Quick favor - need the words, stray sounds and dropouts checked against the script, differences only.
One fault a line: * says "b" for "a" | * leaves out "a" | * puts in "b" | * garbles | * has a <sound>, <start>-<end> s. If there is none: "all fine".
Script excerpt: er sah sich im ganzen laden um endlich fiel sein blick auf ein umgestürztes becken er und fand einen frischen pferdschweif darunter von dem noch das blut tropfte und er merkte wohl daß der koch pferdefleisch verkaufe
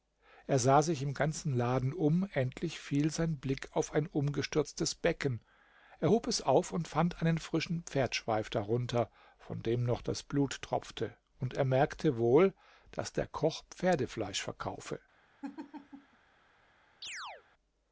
* puts in "hob es auf"
* has a laugh, 15.4-16.2 s
* has a chirp, 17.0-17.4 s